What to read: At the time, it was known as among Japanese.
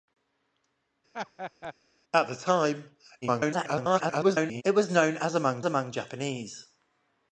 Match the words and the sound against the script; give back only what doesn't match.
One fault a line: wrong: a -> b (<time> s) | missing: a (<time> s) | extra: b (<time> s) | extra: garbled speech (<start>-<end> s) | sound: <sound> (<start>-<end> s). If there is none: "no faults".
sound: laugh (1.1-1.7 s)
extra: garbled speech (3.2-4.6 s)
extra: among (5.6 s)